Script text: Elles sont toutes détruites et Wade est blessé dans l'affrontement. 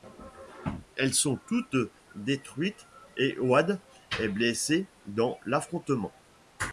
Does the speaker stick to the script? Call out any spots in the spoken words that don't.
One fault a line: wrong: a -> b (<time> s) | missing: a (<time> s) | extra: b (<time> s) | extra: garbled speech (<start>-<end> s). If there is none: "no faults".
no faults